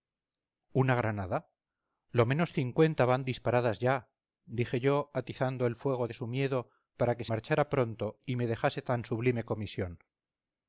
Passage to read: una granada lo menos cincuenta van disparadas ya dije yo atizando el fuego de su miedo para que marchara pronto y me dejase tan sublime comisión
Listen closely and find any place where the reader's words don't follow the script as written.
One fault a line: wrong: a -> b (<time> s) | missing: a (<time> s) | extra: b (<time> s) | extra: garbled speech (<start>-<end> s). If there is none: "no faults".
no faults